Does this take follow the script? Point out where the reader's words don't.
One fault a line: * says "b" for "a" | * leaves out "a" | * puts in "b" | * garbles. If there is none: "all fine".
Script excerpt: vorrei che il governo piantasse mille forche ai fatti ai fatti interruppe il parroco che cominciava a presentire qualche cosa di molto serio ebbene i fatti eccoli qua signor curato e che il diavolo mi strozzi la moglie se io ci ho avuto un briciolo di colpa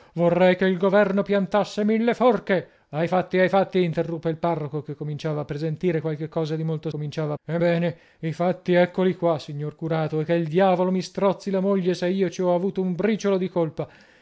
* says "cominciava" for "serio"